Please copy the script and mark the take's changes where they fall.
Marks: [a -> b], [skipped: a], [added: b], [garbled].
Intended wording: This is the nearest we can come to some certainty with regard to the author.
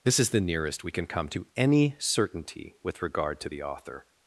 This is the nearest we can come to [some -> any] certainty with regard to the author.